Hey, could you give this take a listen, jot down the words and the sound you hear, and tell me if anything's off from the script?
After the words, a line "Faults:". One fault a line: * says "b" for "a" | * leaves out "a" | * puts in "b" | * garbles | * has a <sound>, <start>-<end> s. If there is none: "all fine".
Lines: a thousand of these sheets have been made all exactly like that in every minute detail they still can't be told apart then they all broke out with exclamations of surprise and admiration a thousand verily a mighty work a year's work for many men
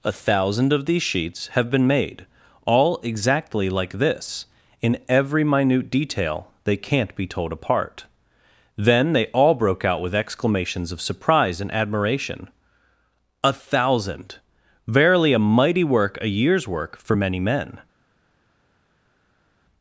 a thousand of these sheets have been made all exactly like this in every minute detail they can't be told apart then they all broke out with exclamations of surprise and admiration a thousand verily a mighty work a year's work for many men
Faults:
* says "this" for "that"
* leaves out "still"